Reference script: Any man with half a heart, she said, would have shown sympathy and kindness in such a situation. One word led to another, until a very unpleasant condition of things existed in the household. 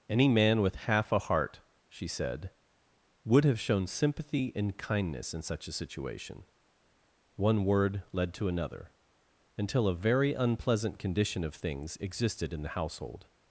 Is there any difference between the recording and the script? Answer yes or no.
no